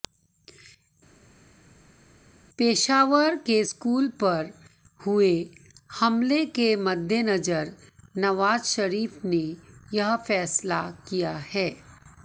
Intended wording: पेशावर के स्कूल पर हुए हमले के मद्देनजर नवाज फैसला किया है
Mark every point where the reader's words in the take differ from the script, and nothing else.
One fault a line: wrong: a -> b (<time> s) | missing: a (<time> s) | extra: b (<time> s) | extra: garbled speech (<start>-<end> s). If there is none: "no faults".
extra: शरीफ ने यह (8.7 s)